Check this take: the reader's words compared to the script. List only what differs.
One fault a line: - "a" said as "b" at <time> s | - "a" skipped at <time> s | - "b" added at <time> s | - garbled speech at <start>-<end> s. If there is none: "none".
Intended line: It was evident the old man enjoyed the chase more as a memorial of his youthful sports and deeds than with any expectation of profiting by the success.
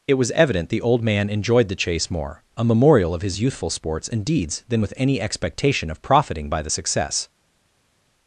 - "as" skipped at 2.4 s